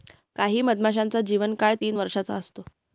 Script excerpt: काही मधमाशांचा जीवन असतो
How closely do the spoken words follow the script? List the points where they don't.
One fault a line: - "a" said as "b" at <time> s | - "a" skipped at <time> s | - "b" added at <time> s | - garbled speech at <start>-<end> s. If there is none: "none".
- "काळ तीन वर्षाचा" added at 1.6 s